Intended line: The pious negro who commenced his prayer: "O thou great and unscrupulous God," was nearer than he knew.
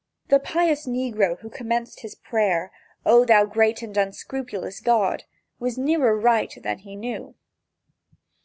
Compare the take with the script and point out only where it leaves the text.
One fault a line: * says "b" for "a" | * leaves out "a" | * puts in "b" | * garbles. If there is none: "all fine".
* puts in "right"